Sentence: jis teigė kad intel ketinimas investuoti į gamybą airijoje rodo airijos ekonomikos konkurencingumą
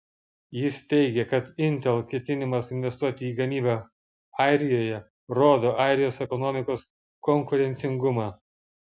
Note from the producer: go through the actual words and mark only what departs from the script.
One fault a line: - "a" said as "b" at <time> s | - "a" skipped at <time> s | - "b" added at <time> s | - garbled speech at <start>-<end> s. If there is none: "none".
none